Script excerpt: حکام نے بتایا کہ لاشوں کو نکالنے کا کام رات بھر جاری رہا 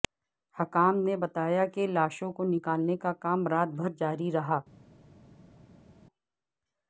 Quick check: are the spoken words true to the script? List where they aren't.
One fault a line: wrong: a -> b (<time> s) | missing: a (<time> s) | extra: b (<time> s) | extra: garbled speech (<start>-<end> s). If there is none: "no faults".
no faults